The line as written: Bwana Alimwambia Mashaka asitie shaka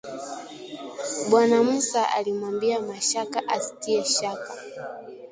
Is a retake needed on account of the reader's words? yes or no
yes